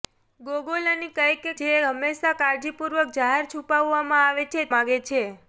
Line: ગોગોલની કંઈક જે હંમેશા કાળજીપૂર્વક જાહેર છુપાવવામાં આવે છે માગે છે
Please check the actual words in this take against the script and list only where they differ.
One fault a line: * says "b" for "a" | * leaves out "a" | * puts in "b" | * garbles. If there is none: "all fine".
all fine